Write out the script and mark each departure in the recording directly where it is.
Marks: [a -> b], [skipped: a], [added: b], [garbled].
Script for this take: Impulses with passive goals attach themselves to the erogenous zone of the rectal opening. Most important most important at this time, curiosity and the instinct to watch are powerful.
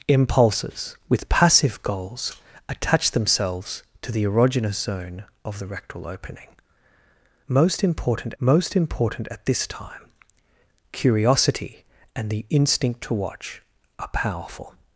Impulses with passive goals attach themselves to the erogenous zone of the rectal opening. Most important most important at this time, curiosity and the instinct to watch are powerful.